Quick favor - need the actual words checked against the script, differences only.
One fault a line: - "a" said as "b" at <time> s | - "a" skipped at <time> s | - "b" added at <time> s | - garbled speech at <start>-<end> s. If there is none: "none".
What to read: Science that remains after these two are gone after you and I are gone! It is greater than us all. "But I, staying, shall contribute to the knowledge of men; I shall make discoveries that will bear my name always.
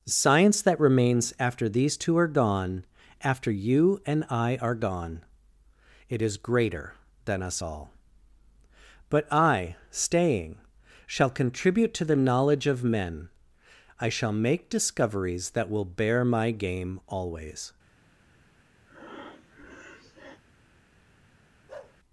- "name" said as "game" at 16.5 s